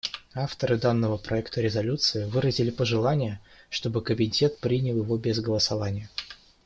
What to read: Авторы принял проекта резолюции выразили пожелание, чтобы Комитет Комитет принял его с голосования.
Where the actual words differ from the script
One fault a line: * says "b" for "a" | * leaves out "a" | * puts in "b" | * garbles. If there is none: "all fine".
* says "данного" for "принял"
* leaves out "Комитет"
* says "без" for "с"